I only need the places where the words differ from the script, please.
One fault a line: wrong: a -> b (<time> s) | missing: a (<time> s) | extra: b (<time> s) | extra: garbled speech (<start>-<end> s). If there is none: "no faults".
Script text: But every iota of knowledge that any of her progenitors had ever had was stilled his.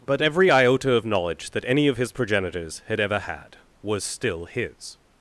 wrong: her -> his (2.0 s)
wrong: stilled -> still (4.0 s)